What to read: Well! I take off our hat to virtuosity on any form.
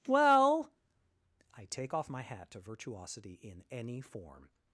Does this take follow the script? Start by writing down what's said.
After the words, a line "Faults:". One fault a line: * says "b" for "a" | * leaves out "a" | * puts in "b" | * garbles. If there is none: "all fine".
Well! I take off my hat to virtuosity in any form.
Faults:
* says "my" for "our"
* says "in" for "on"